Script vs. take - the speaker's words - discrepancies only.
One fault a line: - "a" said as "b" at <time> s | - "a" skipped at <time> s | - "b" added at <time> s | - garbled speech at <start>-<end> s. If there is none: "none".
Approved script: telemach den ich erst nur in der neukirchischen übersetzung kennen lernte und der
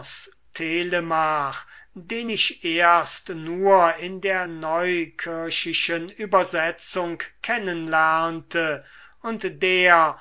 none